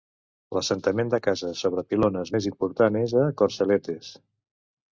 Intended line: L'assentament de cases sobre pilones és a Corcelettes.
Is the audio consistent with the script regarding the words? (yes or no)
no